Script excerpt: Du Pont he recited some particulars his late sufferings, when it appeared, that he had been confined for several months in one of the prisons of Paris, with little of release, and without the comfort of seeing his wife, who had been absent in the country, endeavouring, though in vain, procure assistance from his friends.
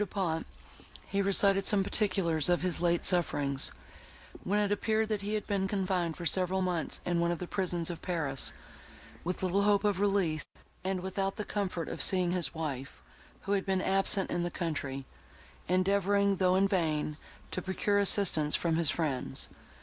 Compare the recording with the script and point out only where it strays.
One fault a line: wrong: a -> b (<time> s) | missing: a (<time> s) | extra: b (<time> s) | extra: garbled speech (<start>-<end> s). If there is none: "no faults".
extra: of (2.5 s)
extra: hope (9.6 s)
extra: to (17.5 s)